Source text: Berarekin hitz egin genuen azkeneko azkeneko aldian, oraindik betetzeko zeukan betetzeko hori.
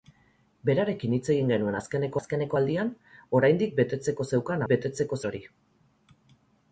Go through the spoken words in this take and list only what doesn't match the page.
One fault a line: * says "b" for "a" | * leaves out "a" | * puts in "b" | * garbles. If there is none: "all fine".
all fine